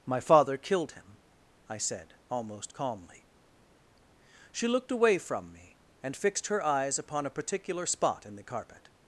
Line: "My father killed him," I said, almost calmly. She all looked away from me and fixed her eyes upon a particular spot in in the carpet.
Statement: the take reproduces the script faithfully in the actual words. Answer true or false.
false